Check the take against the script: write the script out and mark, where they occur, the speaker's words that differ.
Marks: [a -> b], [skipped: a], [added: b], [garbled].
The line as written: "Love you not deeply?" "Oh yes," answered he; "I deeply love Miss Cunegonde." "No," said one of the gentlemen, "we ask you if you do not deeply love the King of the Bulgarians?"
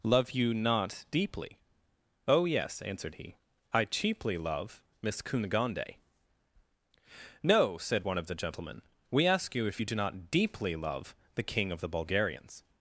"Love you not deeply?" "Oh yes," answered he; "I [deeply -> cheaply] love Miss Cunegonde." "No," said one of the gentlemen, "we ask you if you do not deeply love the King of the Bulgarians?"